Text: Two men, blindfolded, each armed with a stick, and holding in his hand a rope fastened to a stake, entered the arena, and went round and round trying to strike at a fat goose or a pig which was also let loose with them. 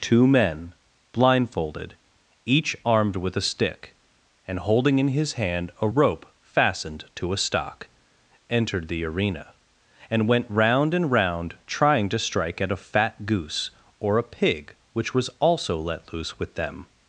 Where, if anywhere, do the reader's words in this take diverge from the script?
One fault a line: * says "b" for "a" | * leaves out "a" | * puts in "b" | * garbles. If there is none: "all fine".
* says "stock" for "stake"